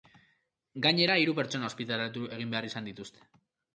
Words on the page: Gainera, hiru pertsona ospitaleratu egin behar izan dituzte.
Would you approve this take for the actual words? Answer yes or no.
yes